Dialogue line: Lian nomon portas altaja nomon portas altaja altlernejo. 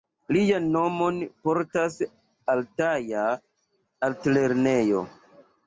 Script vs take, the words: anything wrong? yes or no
yes